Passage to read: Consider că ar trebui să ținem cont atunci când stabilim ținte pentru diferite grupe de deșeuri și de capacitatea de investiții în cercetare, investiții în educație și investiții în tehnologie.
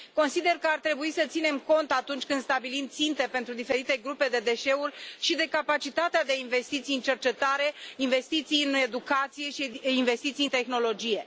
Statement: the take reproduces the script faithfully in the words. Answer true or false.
true